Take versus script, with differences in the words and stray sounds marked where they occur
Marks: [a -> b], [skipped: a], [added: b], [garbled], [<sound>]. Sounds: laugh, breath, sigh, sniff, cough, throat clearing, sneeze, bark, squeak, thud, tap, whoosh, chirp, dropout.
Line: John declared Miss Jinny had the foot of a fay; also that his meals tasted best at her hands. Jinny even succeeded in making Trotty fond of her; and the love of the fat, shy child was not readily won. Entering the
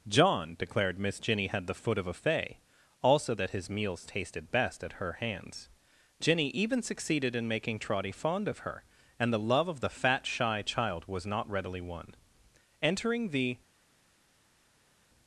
John declared Miss Jinny had the foot of a fay; also that his meals tasted best at her hands. Jinny even succeeded in making Trotty fond of her; and the love of the fat, shy child was not readily won. Entering the